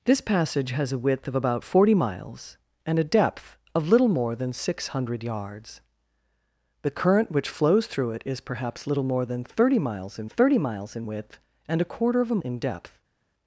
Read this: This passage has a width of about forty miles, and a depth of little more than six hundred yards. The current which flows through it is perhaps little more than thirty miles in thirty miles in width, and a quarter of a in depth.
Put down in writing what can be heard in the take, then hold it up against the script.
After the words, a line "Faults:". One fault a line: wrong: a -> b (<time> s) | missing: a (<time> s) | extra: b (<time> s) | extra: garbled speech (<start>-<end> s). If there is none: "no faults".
This passage has a width of about forty miles, and a depth of little more than six hundred yards. The current which flows through it is perhaps little more than thirty miles in thirty miles in width, and a quarter of a in depth.
Faults:
no faults